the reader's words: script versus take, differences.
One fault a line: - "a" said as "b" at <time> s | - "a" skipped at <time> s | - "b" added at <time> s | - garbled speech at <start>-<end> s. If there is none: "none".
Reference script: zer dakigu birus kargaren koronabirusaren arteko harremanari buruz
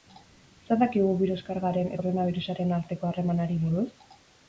none